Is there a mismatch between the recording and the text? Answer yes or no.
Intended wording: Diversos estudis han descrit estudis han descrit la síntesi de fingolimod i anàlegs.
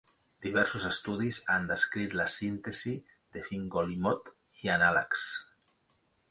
yes